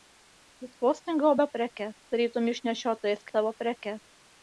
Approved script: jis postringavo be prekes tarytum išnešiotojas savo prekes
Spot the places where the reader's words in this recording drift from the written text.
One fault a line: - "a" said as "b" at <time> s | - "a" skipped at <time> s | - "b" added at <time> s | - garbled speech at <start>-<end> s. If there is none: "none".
none